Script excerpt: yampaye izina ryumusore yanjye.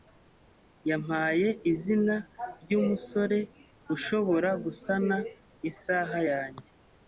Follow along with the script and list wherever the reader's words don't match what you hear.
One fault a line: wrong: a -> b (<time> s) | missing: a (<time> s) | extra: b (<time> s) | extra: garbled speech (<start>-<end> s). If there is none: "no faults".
extra: ushobora gusana isaha (3.9 s)